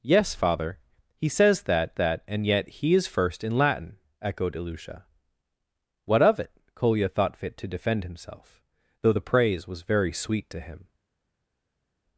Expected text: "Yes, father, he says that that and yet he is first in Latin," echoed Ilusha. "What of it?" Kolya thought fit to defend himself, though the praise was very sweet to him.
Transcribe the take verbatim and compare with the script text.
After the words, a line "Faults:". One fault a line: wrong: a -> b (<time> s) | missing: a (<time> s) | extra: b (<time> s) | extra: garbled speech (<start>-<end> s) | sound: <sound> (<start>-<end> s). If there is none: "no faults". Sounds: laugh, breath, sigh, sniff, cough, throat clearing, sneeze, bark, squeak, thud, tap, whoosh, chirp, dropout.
"Yes, father, he says that that and yet he is first in Latin," echoed Ilusha. "What of it?" Kolya thought fit to defend himself, though the praise was very sweet to him.
Faults:
no faults